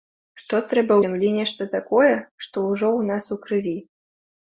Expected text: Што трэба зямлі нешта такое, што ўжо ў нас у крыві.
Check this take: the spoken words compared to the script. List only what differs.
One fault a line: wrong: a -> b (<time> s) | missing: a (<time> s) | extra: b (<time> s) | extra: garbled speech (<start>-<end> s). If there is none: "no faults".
no faults